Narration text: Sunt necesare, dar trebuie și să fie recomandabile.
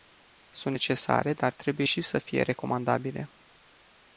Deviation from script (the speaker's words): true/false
false